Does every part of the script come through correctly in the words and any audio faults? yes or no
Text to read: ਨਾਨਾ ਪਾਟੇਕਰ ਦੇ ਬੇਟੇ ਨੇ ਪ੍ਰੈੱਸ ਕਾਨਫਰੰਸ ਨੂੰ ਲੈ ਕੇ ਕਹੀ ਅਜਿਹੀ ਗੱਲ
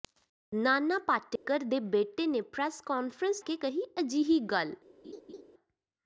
no